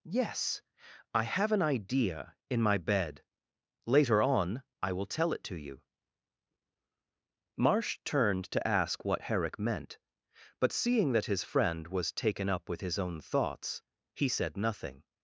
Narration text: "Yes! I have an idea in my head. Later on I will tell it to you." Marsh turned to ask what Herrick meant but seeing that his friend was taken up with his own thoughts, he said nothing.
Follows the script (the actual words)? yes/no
no